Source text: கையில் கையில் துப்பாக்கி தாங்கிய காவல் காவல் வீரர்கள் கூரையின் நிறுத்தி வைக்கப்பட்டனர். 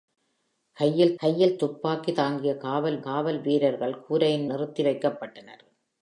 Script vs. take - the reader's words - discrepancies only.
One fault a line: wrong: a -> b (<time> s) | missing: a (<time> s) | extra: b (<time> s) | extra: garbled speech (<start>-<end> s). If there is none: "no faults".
no faults